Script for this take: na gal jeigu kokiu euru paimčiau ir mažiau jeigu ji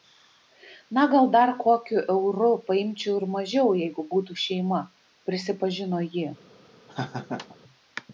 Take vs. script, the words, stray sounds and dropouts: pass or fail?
fail